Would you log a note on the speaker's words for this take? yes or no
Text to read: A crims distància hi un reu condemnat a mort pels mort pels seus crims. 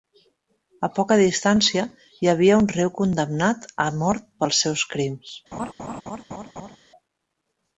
yes